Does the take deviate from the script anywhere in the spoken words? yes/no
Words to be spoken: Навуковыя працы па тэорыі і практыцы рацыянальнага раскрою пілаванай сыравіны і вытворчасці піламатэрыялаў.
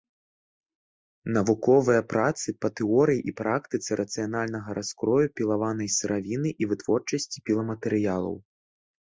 no